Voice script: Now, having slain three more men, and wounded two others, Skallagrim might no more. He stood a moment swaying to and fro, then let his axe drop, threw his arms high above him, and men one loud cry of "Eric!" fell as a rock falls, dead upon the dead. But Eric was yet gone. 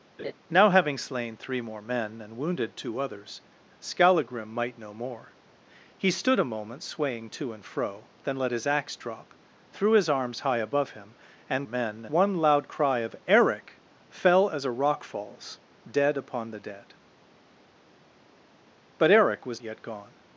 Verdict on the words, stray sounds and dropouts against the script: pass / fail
fail